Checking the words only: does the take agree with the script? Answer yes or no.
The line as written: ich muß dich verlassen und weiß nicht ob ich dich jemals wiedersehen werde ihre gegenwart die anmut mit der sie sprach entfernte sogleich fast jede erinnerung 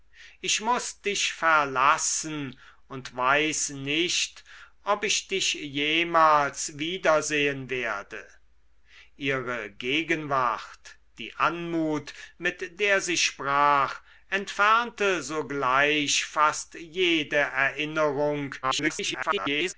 no